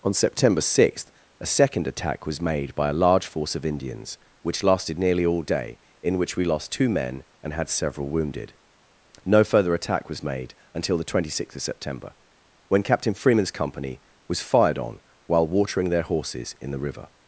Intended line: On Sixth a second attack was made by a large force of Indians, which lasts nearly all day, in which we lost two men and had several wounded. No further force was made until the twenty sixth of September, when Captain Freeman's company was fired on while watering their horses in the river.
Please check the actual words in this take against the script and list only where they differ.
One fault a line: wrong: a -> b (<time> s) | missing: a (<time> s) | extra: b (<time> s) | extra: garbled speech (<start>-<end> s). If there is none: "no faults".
extra: September (0.1 s)
wrong: lasts -> lasted (4.6 s)
wrong: force -> attack (9.8 s)